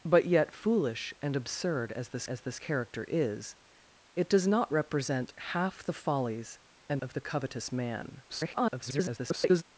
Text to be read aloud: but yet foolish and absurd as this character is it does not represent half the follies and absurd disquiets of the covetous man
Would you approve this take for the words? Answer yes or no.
no